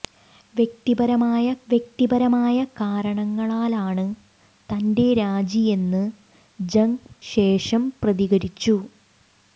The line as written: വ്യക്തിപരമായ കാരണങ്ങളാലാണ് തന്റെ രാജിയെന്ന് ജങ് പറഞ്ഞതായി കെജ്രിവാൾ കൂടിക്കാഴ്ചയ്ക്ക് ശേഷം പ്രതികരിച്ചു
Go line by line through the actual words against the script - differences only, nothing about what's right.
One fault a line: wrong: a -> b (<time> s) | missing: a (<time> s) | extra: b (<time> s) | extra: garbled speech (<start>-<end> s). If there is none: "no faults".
extra: വ്യക്തിപരമായ (1.7 s)
missing: പറഞ്ഞതായി കെജ്രിവാൾ കൂടിക്കാഴ്ചയ്ക്ക് (6.9 s)